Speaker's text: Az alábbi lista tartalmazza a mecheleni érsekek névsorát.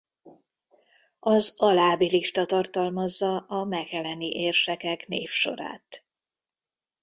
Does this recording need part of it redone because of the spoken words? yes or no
no